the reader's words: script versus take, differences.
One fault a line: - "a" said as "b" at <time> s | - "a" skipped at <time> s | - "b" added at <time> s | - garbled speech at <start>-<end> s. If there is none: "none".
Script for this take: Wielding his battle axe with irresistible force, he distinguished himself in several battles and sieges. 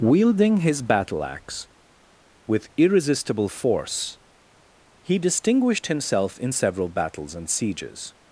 none